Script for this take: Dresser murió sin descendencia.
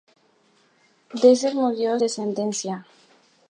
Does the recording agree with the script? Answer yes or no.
no